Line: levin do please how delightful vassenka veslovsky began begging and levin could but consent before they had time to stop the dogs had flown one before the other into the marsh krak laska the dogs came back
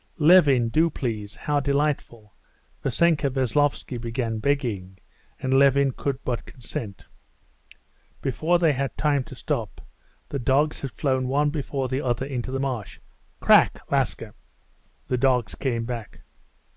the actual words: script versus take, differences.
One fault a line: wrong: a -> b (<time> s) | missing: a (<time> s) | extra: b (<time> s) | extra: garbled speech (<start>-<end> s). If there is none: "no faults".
no faults